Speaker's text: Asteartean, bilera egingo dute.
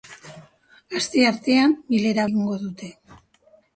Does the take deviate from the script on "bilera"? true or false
false